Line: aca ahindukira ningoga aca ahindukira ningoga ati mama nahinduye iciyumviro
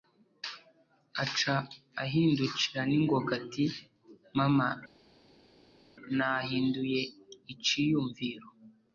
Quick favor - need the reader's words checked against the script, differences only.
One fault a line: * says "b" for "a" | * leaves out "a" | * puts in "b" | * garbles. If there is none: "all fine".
* leaves out "aca ahindukira ningoga"